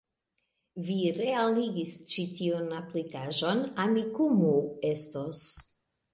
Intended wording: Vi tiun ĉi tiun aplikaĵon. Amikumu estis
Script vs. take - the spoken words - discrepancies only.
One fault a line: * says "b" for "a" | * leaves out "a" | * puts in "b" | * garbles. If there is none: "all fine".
* says "realigis" for "tiun"
* says "estos" for "estis"